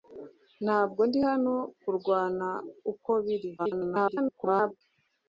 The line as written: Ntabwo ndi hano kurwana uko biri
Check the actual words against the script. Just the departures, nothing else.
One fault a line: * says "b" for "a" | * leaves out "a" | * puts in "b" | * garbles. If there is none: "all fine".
* garbles